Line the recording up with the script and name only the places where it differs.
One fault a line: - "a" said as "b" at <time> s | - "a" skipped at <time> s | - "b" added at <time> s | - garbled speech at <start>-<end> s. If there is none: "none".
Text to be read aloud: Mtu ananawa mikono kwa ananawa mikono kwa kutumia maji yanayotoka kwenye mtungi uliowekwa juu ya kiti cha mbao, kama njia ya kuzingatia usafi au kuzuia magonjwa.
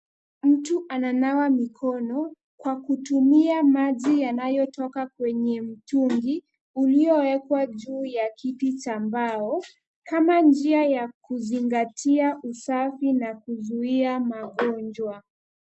- "ananawa mikono kwa" skipped at 2.8 s
- "au" said as "na" at 13.1 s